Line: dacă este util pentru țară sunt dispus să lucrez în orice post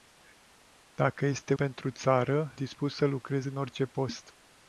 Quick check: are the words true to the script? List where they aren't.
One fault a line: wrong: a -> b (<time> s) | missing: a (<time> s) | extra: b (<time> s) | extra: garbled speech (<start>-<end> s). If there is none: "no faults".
missing: util (1.5 s)
missing: sunt (2.6 s)